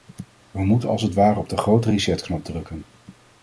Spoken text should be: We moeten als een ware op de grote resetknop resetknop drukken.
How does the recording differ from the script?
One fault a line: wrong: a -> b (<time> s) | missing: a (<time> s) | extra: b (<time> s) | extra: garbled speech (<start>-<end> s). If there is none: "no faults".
wrong: een -> het (1.0 s)
missing: resetknop (2.4 s)